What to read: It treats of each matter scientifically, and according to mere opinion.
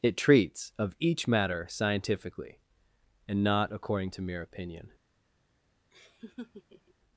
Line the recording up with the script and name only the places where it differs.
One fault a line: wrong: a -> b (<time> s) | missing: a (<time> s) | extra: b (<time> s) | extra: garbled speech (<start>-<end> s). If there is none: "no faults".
extra: not (3.4 s)